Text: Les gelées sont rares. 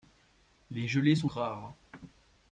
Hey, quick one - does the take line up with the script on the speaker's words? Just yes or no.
yes